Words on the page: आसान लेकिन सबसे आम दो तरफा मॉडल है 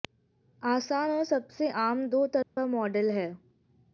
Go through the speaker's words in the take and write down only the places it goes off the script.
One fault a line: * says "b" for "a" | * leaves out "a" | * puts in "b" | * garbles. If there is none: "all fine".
* says "और" for "लेकिन"